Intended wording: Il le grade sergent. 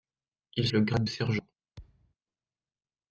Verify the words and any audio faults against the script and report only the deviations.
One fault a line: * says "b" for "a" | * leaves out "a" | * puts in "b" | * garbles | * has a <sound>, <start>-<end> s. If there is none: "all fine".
* has a thud, 1.8-2.1 s